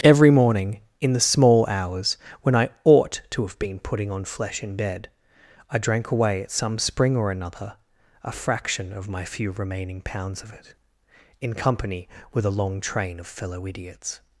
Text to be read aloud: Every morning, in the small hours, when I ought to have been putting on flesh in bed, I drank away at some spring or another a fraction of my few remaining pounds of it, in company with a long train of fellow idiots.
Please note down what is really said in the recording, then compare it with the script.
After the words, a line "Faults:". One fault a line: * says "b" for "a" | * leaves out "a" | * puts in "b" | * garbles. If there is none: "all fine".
Every morning, in the small hours, when I ought to have been putting on flesh in bed, I drank away at some spring or another a fraction of my few remaining pounds of it, in company with a long train of fellow idiots.
Faults:
all fine